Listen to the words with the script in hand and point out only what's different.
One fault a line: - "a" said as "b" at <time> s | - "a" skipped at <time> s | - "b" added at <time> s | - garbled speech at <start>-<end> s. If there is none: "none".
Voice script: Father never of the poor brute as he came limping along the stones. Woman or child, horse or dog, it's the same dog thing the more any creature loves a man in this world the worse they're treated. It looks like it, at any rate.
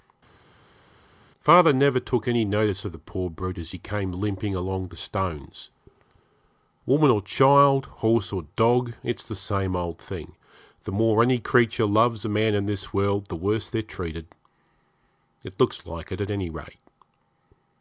- "took any notice" added at 2.0 s
- "dog" said as "old" at 9.7 s